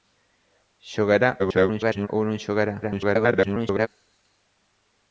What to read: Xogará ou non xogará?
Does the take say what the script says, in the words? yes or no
no